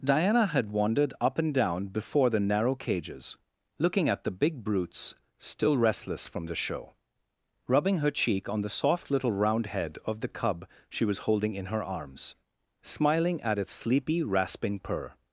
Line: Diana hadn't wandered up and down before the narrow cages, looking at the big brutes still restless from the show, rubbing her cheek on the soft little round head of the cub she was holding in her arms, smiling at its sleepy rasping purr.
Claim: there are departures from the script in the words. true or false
true